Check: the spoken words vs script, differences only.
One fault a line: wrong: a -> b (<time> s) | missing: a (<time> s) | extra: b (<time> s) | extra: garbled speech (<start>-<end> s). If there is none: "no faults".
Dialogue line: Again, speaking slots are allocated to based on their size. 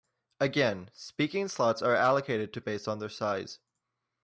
no faults